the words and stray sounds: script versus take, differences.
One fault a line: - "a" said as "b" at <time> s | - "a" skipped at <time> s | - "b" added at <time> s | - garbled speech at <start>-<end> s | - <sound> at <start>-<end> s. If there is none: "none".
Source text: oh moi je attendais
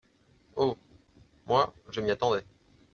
- "m'y" added at 2.0 s